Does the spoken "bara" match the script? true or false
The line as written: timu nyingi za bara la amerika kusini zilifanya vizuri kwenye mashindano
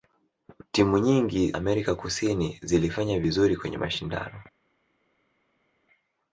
false